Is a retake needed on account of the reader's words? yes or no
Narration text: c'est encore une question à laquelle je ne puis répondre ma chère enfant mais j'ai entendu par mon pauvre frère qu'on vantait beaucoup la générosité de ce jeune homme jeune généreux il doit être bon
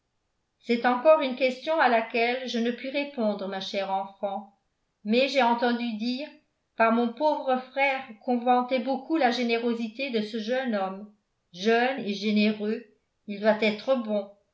yes